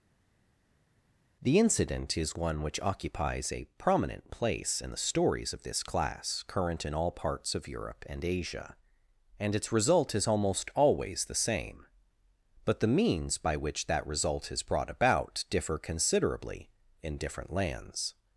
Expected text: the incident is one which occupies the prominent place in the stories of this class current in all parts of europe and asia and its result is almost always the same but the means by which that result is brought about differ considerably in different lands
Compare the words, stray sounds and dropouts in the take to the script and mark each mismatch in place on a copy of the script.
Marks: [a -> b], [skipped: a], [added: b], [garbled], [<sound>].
the incident is one which occupies [the -> a] prominent place in the stories of this class current in all parts of europe and asia and its result is almost always the same but the means by which that result is brought about differ considerably in different lands